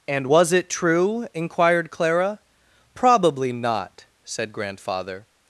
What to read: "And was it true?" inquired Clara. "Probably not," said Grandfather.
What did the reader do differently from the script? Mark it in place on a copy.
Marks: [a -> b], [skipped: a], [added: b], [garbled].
"And was it true?" inquired Clara. "Probably not," said Grandfather.